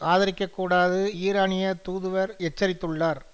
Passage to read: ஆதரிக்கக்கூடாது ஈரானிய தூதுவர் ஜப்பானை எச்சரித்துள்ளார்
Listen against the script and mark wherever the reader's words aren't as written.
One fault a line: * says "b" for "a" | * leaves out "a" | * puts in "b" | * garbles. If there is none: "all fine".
* leaves out "ஜப்பானை"